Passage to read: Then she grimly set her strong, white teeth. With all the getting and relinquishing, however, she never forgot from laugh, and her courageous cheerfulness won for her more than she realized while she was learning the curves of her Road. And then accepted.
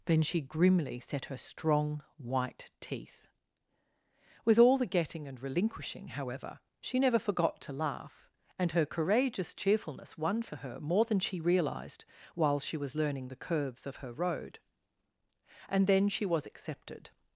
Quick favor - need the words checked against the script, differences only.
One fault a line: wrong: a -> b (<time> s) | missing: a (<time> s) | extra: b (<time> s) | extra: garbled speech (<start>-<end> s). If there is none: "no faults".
wrong: from -> to (7.6 s)
extra: she was (16.1 s)